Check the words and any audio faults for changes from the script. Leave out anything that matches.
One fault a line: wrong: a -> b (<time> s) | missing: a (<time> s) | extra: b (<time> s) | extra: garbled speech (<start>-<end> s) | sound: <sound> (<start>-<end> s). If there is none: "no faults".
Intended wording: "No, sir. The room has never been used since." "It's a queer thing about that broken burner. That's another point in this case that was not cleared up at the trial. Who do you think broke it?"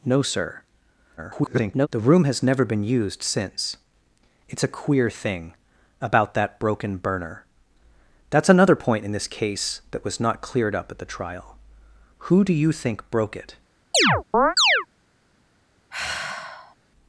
extra: garbled speech (1.2-1.9 s)
sound: chirp (13.9-14.9 s)
sound: sigh (15.9-16.8 s)